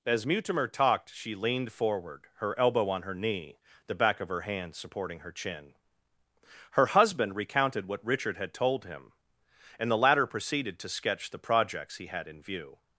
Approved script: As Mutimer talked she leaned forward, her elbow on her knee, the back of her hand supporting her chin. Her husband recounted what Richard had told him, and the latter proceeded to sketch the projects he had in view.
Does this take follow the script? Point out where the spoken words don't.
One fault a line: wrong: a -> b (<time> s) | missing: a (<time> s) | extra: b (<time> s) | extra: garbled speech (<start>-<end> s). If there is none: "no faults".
no faults